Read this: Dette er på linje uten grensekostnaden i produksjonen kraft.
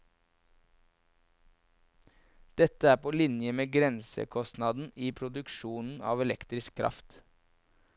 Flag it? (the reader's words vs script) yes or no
yes